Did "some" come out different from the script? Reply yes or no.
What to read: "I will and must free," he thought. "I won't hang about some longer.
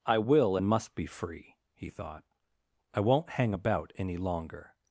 yes